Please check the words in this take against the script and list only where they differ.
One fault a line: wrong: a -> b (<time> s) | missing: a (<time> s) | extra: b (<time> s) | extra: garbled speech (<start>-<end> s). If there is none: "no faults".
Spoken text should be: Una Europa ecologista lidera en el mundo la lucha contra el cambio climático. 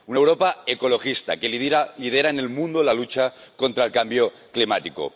extra: que (1.4 s)